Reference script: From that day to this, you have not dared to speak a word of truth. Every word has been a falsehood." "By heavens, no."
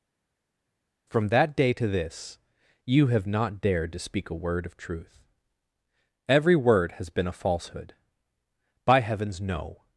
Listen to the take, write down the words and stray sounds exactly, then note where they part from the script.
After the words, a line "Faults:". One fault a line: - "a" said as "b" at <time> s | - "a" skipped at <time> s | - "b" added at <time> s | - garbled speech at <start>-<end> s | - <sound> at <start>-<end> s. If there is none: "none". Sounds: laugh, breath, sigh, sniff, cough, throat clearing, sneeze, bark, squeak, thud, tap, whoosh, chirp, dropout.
From that day to this, you have not dared to speak a word of truth. Every word has been a falsehood." "By heavens, no."
Faults:
none